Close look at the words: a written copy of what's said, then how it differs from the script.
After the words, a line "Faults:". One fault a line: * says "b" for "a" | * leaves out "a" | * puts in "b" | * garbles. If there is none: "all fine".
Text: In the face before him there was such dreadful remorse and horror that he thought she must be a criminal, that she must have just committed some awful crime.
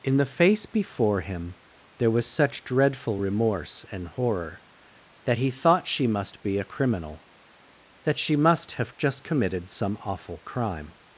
In the face before him there was such dreadful remorse and horror that he thought she must be a criminal, that she must have just committed some awful crime.
Faults:
all fine